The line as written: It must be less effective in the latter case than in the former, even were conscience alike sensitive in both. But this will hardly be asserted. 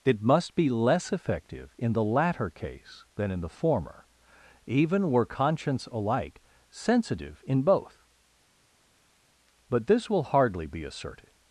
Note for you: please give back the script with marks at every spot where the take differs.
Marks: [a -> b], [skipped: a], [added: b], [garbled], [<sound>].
It must be less effective in the latter case than in the former, even were conscience alike sensitive in both. But this will hardly be asserted.